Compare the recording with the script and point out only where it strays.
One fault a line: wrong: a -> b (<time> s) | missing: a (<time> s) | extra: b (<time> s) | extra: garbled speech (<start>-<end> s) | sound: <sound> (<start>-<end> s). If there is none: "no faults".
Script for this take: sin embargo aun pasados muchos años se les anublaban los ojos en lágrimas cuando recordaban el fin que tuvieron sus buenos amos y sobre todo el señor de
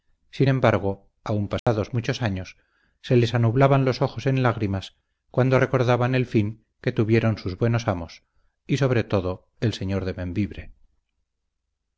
sound: dropout (1.6-1.7 s)